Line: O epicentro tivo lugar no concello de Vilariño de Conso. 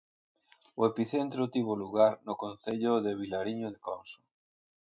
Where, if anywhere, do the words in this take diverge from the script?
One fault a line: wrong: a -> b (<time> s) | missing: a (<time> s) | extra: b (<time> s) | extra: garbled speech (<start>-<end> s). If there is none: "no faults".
no faults